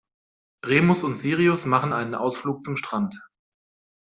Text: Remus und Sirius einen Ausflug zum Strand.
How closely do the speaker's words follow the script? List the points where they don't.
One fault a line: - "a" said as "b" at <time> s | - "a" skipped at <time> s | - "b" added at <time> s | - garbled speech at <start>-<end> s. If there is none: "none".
- "machen" added at 1.6 s